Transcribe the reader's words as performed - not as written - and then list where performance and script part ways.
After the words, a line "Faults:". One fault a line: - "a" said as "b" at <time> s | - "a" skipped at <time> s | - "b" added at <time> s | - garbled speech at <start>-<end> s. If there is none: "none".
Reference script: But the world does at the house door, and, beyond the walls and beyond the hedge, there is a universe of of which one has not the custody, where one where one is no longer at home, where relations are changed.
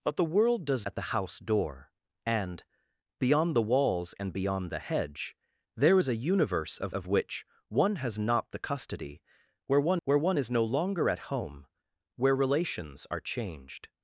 But the world does at the house door, and, beyond the walls and beyond the hedge, there is a universe of of which one has not the custody, where one where one is no longer at home, where relations are changed.
Faults:
none